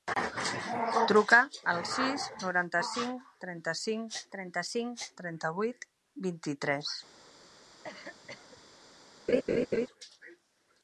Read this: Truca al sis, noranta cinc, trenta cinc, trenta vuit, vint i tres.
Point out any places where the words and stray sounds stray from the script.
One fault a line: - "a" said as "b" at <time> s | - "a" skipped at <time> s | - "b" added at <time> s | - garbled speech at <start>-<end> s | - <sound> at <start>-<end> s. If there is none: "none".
- "cinc trenta" added at 4.7 s
- cough at 7.8-8.6 s
- laugh at 9.3-9.9 s